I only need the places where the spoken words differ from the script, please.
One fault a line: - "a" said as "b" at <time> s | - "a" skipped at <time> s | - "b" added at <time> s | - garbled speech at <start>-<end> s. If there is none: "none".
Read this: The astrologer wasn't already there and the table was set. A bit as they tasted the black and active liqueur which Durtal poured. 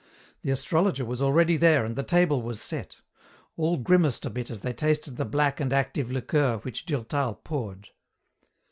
- "wasn't" said as "was" at 1.1 s
- "All grimaced" added at 3.5 s